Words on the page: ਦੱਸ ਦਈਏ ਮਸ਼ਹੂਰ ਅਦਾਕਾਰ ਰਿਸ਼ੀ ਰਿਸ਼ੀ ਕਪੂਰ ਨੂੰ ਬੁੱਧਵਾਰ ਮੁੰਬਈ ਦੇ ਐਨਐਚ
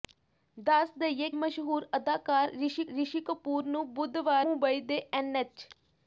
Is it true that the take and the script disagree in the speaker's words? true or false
false